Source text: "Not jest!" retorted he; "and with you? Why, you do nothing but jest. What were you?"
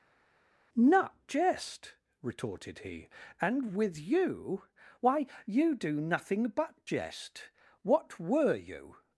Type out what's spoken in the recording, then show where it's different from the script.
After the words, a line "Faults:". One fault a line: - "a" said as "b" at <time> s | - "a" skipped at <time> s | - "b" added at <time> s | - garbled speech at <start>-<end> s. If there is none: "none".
"Not jest!" retorted he; "and with you? Why, you do nothing but jest. What were you?"
Faults:
none